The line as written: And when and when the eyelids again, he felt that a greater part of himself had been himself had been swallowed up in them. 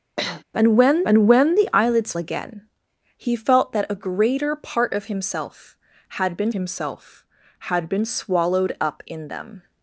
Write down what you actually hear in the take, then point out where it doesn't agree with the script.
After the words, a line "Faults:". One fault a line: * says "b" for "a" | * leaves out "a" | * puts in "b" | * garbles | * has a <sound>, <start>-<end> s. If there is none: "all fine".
And when and when the eyelids again, he felt that a greater part of himself had been himself had been swallowed up in them.
Faults:
* has a sniff, 0.2-0.4 s